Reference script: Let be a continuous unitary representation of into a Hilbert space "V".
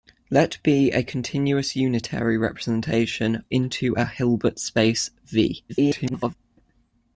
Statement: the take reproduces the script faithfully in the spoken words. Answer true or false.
false